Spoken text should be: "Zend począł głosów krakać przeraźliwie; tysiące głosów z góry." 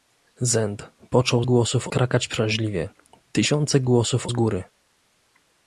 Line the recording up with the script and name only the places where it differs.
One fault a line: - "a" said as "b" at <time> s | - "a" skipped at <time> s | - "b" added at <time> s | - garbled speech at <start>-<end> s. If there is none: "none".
none